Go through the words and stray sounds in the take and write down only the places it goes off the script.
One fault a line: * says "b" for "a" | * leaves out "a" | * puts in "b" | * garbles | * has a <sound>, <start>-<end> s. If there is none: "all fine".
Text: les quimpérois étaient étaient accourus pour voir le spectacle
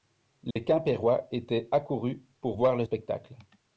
* has a dropout, 0.5-0.6 s
* leaves out "étaient"